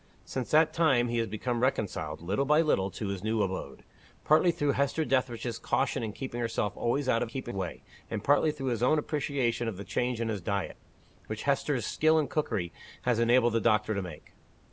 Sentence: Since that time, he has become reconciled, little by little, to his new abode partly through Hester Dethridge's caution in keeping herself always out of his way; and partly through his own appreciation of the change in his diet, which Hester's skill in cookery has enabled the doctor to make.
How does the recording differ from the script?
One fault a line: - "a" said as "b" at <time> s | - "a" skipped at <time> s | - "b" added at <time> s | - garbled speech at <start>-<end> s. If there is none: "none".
- "his" said as "keeping" at 7.2 s